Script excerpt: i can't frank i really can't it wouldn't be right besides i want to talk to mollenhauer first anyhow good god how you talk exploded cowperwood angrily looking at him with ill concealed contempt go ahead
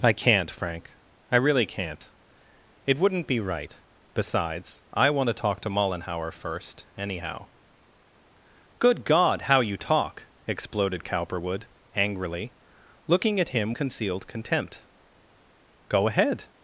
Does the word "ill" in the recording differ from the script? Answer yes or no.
yes